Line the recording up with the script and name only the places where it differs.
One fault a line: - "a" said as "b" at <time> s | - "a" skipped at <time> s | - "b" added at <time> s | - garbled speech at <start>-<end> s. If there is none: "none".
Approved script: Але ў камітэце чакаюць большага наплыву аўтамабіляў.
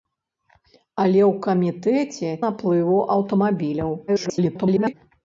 - "чакаюць большага" skipped at 2.3 s
- garbled speech at 4.1-4.9 s